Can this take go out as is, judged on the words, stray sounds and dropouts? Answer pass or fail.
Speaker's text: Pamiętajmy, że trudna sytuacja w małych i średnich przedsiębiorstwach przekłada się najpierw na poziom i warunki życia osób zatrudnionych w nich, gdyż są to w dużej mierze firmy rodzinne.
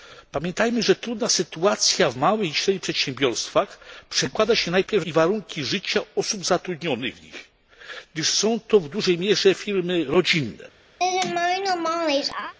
fail